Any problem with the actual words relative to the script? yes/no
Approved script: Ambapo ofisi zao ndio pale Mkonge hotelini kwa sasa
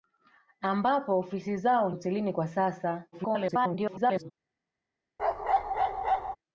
yes